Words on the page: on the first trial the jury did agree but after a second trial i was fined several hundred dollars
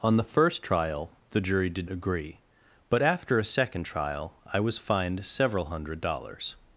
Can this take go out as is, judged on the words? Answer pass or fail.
pass